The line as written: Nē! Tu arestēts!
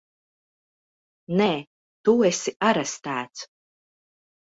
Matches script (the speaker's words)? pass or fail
fail